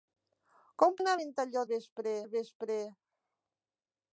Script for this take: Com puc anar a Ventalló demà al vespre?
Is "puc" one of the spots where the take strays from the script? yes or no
yes